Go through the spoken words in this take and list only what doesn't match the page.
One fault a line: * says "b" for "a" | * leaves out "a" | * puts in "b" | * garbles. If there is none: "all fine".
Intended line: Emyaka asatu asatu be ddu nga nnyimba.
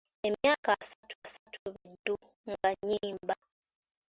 all fine